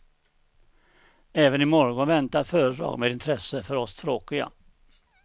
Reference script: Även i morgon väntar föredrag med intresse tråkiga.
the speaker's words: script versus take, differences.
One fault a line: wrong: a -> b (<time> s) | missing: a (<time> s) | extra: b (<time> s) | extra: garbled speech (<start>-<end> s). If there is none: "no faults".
extra: för oss (3.6 s)